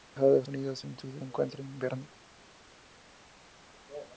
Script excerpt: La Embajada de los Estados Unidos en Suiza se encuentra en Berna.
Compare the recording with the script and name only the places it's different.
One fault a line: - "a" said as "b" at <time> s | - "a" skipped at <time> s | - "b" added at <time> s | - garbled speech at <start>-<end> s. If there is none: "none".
- "Estados" skipped at 0.4 s
- "se" skipped at 1.2 s